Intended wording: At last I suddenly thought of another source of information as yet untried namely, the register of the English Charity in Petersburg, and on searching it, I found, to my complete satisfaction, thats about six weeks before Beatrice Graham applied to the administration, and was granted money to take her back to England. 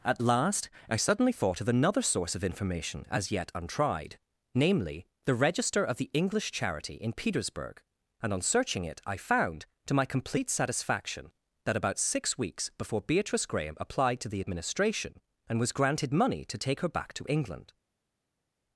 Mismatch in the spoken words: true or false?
true